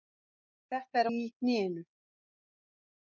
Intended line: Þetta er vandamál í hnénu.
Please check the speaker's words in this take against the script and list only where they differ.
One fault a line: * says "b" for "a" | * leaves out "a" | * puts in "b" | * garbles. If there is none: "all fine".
* leaves out "vandamál"